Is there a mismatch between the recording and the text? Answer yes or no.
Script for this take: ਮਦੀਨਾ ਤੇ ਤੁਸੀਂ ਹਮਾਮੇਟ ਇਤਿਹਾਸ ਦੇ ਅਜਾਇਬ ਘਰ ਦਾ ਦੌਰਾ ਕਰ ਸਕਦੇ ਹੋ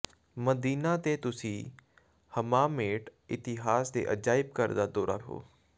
yes